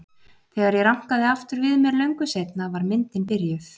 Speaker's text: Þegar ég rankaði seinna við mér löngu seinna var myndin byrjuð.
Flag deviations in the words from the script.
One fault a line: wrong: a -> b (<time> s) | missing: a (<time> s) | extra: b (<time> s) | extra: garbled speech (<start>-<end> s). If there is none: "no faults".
wrong: seinna -> aftur (1.3 s)